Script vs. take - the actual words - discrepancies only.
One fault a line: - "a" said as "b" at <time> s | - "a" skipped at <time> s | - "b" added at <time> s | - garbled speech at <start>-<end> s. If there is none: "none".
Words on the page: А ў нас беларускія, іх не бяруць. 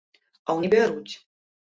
- "нас беларускія іх" skipped at 0.6 s